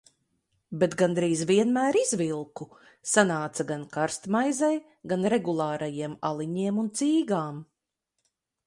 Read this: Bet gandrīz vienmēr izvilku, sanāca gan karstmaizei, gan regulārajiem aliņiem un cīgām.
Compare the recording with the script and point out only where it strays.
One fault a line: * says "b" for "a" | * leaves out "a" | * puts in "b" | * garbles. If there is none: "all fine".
all fine